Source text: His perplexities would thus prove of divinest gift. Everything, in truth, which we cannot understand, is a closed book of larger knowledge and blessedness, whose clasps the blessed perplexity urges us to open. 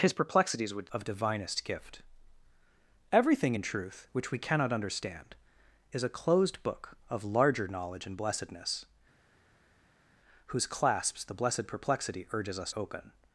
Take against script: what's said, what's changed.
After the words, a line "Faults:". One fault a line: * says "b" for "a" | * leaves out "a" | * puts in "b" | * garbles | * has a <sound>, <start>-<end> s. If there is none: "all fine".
His perplexities would of divinest gift. Everything, in truth, which we cannot understand, is a closed book of larger knowledge and blessedness, whose clasps the blessed perplexity urges us open.
Faults:
* leaves out "thus prove"
* leaves out "to"